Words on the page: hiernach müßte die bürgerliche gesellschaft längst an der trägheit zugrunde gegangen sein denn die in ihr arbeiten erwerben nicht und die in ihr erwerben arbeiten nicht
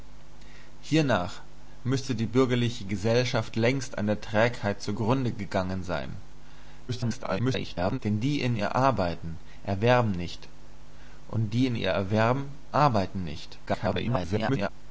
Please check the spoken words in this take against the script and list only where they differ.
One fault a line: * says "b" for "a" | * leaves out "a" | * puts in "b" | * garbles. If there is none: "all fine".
* garbles
* garbles